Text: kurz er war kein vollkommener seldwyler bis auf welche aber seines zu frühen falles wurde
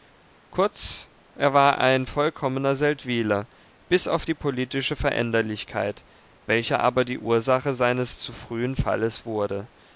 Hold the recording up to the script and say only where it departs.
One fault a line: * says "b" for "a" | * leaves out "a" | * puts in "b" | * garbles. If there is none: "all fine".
* says "ein" for "kein"
* puts in "die politische veränderlichkeit"
* puts in "die ursache"